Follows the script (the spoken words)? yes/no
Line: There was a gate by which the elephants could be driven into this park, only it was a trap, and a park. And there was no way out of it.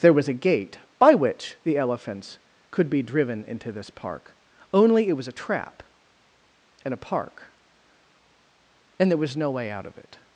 yes